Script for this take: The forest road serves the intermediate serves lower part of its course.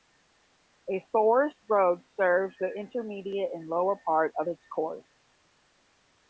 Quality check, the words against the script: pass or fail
fail